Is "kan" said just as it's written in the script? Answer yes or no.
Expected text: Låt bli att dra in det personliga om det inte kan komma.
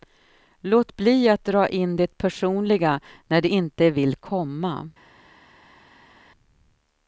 no